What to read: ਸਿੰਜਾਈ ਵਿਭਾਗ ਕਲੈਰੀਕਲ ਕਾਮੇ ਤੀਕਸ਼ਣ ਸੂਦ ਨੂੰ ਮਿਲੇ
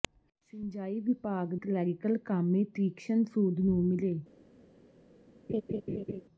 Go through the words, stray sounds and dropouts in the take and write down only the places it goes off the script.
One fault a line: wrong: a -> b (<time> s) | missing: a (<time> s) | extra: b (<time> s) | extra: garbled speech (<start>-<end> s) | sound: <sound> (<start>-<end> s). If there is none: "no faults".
sound: laugh (5.5-6.2 s)